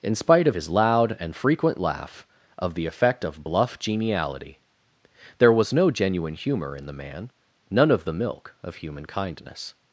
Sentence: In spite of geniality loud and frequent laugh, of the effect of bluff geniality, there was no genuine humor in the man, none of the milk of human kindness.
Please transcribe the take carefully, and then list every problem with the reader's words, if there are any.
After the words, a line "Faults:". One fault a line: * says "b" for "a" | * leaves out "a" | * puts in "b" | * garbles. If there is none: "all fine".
In spite of his loud and frequent laugh, of the effect of bluff geniality, there was no genuine humor in the man, none of the milk of human kindness.
Faults:
* says "his" for "geniality"